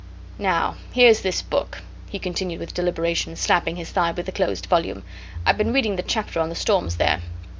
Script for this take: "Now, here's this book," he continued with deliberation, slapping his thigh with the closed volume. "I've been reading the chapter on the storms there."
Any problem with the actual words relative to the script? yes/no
no